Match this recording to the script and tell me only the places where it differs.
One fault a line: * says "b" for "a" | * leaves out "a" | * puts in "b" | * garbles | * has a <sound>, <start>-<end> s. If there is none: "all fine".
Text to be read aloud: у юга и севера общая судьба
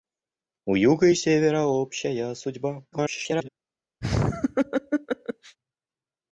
* garbles
* has a laugh, 4.0-5.6 s